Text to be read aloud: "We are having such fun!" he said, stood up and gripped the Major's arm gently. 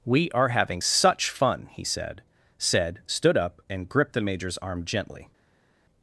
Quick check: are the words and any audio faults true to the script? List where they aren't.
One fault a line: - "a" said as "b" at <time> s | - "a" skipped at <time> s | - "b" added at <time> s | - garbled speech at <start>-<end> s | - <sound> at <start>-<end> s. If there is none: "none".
- "said" added at 2.6 s